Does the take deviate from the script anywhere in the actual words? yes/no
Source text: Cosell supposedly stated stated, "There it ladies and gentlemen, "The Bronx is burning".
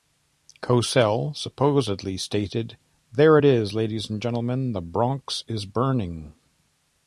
yes